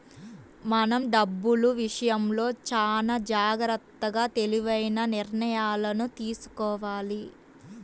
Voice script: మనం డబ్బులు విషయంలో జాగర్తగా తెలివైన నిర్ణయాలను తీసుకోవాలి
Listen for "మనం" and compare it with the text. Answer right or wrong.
right